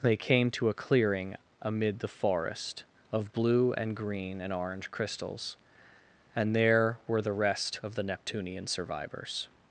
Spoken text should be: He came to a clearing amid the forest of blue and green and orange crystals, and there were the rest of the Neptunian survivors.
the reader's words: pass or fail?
fail